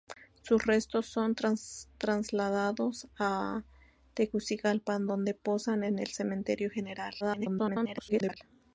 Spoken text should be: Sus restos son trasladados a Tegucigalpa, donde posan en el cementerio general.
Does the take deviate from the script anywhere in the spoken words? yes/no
yes